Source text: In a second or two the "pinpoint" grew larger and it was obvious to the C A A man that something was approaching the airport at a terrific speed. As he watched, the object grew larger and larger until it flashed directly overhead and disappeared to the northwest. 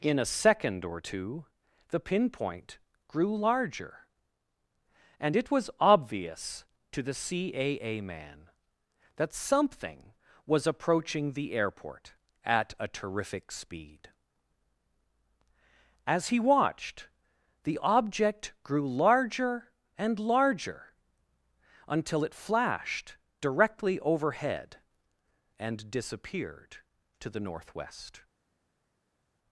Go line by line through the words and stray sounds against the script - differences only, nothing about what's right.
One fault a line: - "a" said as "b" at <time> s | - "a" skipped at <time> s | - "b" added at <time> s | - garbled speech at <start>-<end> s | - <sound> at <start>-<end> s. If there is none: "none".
none